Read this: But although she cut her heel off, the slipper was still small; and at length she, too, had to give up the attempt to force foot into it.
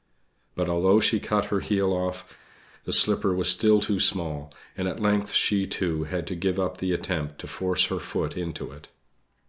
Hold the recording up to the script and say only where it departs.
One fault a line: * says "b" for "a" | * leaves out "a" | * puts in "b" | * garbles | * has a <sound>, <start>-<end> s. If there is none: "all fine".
* puts in "too"
* puts in "her"